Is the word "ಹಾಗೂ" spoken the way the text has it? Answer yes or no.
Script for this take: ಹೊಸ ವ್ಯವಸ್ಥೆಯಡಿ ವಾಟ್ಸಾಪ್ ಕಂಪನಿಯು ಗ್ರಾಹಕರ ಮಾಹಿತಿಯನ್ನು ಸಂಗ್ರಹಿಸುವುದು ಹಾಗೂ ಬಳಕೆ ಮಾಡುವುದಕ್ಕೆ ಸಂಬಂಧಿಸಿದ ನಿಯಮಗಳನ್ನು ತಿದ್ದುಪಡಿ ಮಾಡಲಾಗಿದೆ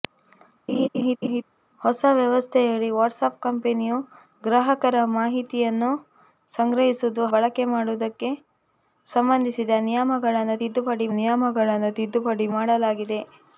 no